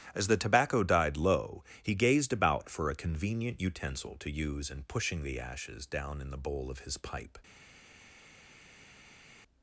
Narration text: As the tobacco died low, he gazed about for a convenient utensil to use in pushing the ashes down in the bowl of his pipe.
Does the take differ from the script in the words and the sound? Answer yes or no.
no